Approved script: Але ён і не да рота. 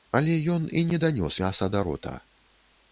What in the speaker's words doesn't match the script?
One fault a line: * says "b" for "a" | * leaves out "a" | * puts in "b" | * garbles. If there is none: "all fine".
* puts in "данёс мяса"